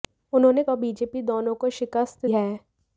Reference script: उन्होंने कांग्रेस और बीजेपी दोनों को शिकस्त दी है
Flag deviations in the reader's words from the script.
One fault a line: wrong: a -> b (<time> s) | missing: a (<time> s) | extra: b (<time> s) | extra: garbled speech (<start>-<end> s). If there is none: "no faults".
missing: कांग्रेस (0.6 s)
missing: दी (2.3 s)